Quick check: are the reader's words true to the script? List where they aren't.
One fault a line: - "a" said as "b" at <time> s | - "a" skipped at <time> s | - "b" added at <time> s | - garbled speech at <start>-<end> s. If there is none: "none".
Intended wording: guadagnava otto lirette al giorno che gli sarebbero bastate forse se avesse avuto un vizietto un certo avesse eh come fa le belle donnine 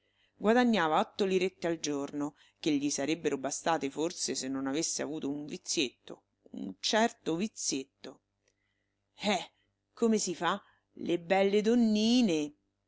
- "non" added at 4.5 s
- "avesse" said as "vizietto" at 7.3 s
- "si" added at 10.2 s